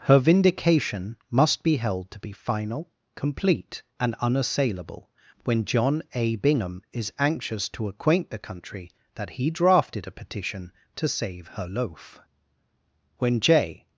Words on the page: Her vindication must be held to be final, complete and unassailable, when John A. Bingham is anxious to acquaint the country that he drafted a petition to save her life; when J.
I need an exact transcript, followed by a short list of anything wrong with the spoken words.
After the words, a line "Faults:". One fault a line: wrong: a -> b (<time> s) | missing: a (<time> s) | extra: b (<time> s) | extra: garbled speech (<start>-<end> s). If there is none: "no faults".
Her vindication must be held to be final, complete and unassailable, when John A. Bingham is anxious to acquaint the country that he drafted a petition to save her loaf; when J.
Faults:
wrong: life -> loaf (11.6 s)